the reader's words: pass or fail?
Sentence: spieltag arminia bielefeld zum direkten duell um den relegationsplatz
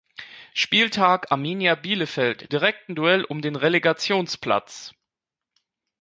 fail